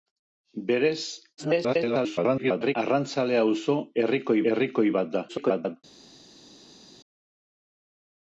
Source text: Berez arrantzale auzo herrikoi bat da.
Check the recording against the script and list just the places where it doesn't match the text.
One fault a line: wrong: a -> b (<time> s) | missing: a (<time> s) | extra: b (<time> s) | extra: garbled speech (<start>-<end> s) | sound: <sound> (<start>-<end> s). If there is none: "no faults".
extra: garbled speech (1.4-2.8 s)
extra: herrikoi (4.5 s)
extra: garbled speech (5.3-5.8 s)